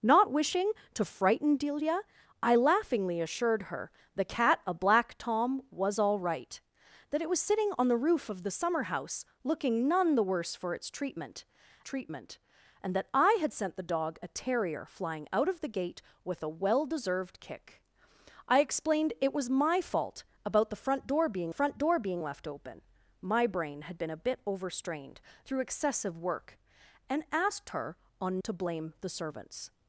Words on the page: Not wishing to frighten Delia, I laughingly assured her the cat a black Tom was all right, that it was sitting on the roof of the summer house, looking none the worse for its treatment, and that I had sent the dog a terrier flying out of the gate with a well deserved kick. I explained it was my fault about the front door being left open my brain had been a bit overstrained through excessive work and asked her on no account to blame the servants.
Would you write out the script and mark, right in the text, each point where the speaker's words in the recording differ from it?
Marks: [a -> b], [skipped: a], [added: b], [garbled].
Not wishing to frighten Delia, I laughingly assured her the cat a black Tom was all right, that it was sitting on the roof of the summer house, looking none the worse for its treatment, [added: treatment] and that I had sent the dog a terrier flying out of the gate with a well deserved kick. I explained it was my fault about the front door being [added: front door being] left open my brain had been a bit overstrained through excessive work and asked her on [skipped: no account] to blame the servants.